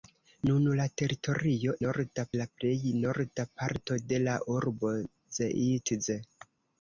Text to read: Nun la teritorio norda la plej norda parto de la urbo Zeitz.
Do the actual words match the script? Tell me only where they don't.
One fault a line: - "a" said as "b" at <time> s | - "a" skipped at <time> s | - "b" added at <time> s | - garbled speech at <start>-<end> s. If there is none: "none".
none